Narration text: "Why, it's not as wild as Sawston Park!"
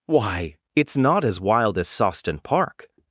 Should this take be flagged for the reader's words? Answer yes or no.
no